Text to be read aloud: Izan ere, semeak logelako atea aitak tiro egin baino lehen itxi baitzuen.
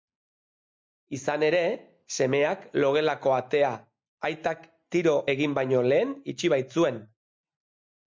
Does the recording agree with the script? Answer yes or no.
yes